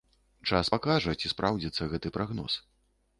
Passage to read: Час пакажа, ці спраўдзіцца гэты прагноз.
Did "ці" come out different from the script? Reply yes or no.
no